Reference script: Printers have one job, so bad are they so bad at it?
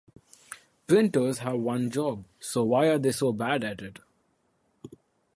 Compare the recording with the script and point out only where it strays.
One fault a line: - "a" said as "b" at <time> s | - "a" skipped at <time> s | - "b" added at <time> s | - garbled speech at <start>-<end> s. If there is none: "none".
- "bad" said as "why" at 2.6 s